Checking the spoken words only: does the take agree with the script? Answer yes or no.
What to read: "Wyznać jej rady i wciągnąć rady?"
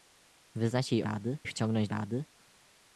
yes